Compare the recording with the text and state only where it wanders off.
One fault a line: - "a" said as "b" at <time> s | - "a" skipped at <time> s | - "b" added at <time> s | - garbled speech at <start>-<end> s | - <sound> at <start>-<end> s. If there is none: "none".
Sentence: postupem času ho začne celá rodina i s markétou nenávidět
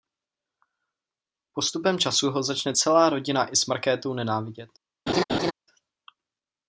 - laugh at 5.1-5.5 s